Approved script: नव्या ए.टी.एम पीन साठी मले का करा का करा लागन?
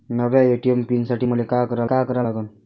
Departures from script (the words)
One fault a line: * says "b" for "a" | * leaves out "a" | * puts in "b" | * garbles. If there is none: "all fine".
all fine